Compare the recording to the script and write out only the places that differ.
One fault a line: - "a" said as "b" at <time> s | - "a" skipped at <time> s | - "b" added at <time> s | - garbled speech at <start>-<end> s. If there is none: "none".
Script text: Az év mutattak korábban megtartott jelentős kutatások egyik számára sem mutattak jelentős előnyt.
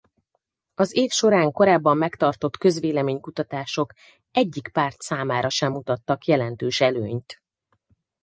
- "mutattak" said as "során" at 1.1 s
- "jelentős" said as "közvélemény" at 2.6 s
- "párt" added at 4.7 s